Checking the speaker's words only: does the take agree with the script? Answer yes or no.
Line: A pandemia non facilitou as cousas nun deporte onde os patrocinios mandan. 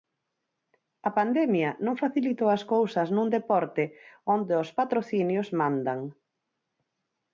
yes